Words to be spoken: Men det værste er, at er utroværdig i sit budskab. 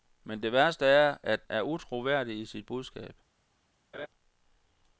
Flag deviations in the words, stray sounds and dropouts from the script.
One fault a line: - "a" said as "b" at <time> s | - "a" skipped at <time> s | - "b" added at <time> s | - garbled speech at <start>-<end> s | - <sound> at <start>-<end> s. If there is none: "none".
- laugh at 3.9-4.1 s